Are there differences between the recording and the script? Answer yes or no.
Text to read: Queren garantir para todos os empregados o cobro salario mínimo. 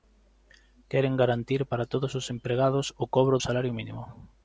no